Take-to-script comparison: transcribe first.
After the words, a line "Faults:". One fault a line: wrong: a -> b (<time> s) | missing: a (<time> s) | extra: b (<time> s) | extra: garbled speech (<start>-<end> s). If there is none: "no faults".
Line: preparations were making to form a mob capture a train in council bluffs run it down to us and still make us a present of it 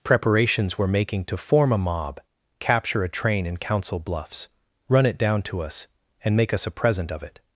preparations were making to form a mob capture a train in council bluffs run it down to us and make us a present of it
Faults:
missing: still (6.3 s)